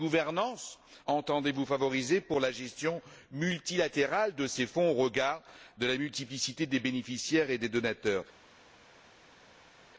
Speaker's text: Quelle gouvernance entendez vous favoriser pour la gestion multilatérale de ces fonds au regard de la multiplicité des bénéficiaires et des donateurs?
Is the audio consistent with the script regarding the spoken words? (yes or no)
yes